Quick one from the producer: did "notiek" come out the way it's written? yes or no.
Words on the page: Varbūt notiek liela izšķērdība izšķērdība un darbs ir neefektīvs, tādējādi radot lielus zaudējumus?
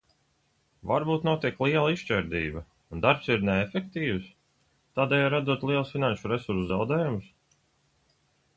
yes